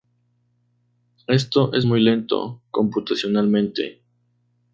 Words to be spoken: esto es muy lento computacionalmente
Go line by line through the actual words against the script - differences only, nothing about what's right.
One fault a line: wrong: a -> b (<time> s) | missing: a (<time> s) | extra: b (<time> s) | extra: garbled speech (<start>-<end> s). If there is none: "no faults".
no faults